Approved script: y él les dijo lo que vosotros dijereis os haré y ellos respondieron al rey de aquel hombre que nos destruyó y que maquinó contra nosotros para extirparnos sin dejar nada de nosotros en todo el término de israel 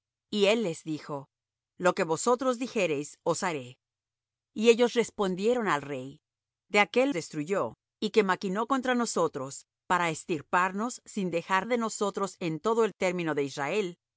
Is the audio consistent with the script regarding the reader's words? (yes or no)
no